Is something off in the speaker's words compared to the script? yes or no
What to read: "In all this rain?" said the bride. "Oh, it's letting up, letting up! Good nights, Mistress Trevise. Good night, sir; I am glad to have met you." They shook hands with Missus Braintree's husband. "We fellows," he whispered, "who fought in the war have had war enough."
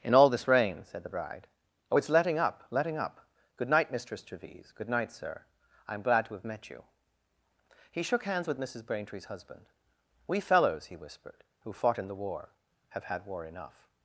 yes